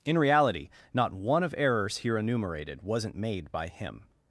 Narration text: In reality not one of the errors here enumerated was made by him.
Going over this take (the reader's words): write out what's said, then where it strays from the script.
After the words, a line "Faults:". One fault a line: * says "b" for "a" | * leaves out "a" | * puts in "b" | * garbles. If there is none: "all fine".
In reality not one of errors here enumerated wasn't made by him.
Faults:
* leaves out "the"
* says "wasn't" for "was"